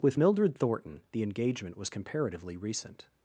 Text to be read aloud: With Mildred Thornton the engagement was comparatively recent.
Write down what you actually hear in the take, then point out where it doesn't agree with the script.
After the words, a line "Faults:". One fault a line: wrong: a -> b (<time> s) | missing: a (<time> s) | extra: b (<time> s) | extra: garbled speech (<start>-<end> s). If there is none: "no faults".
With Mildred Thornton the engagement was comparatively recent.
Faults:
no faults